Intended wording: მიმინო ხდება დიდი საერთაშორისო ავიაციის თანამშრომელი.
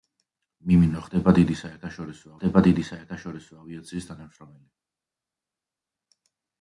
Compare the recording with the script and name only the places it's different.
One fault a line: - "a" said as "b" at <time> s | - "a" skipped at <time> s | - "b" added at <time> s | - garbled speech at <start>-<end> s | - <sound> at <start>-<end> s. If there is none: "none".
- "ხდება დიდი საერთაშორისო" added at 2.4 s